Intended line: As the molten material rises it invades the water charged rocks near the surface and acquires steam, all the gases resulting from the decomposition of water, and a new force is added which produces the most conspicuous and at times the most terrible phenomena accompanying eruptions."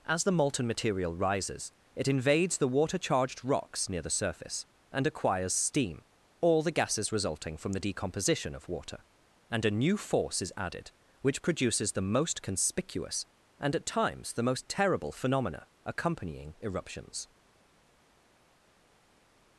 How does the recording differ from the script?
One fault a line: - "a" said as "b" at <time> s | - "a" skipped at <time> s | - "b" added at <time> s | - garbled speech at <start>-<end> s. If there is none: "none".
none